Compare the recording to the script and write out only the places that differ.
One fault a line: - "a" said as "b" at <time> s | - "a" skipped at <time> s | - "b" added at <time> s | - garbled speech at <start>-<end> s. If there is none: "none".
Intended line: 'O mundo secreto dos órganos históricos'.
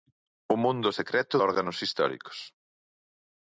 - "dos" skipped at 1.4 s